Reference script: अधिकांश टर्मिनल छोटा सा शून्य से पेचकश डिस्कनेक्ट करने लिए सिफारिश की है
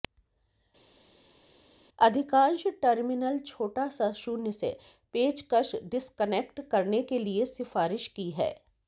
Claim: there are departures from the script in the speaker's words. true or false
true